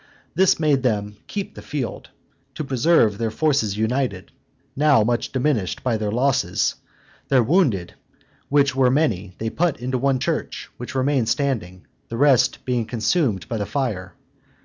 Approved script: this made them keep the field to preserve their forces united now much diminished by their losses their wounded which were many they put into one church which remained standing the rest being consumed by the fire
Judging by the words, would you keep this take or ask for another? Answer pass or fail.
pass